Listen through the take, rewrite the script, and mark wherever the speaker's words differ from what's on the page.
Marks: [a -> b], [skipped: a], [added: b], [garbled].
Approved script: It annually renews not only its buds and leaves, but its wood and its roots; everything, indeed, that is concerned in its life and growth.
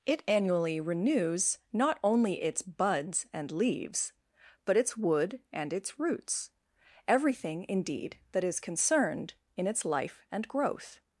It annually renews not only its buds and leaves, but its wood and its roots; everything, indeed, that is concerned in its life and growth.